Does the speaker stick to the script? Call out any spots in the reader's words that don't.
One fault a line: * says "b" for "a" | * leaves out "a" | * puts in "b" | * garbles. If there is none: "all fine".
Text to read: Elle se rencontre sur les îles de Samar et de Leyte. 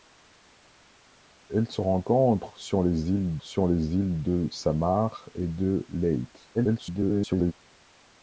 * puts in "sur les îles"
* garbles